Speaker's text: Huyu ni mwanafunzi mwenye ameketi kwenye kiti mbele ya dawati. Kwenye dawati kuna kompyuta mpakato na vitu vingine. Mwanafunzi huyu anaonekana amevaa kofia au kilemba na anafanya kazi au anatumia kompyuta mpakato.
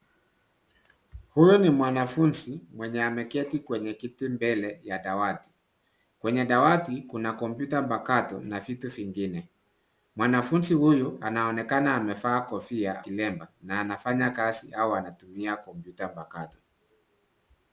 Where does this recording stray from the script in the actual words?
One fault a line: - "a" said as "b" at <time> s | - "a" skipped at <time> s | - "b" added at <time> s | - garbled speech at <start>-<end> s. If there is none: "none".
- "au" skipped at 13.1 s